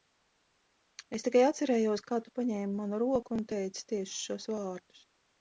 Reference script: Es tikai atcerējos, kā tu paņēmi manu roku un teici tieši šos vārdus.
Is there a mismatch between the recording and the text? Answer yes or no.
no